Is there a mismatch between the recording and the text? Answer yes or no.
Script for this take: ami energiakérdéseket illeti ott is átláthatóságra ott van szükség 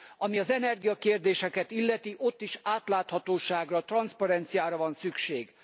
yes